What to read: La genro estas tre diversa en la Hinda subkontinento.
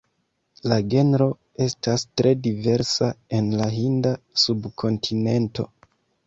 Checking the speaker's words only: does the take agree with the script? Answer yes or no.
yes